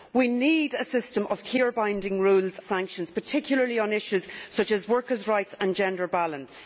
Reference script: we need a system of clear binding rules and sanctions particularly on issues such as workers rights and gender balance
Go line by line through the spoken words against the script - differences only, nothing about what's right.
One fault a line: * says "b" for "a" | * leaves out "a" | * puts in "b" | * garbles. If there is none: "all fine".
* leaves out "and"